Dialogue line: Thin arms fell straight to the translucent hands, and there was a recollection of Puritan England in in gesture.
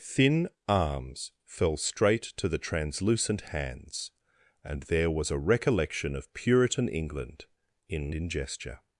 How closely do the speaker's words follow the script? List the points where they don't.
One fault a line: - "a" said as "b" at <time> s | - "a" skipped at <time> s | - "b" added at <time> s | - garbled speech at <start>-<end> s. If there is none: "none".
none